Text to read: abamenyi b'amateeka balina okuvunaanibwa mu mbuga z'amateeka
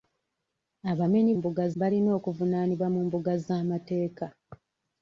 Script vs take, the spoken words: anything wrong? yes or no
yes